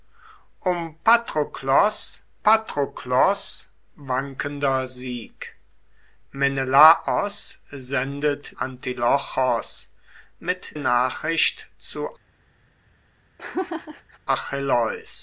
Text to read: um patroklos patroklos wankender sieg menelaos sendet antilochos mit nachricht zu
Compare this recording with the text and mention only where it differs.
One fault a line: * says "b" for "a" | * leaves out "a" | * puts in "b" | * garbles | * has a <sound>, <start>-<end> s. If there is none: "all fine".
* has a laugh, 13.4-14.2 s